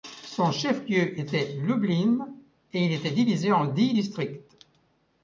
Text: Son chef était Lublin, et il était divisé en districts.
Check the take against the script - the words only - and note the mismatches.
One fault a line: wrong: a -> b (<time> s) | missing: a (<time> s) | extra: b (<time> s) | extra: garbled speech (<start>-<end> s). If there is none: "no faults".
extra: lieu (0.9 s)
extra: dix (3.6 s)